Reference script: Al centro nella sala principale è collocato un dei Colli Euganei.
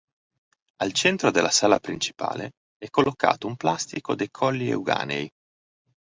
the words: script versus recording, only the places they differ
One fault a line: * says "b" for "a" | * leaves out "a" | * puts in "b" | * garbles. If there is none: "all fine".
* says "della" for "nella"
* puts in "plastico"